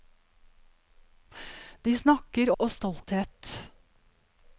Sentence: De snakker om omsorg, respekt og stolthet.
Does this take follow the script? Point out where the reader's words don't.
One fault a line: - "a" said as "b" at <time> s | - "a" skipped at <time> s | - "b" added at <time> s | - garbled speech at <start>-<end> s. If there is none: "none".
- "om omsorg respekt" skipped at 2.5 s